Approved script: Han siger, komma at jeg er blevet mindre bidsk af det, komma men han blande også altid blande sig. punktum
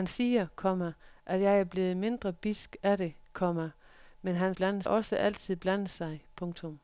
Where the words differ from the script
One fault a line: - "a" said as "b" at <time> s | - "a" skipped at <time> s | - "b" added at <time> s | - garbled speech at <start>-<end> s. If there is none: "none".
none